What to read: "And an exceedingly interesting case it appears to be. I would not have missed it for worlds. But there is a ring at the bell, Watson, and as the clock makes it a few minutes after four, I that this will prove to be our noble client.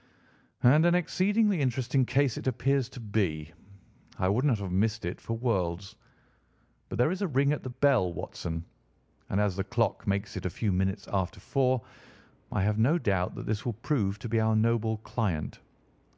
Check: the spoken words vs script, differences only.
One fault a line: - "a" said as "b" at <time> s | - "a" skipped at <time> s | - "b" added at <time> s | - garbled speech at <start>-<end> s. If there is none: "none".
- "have no doubt" added at 12.6 s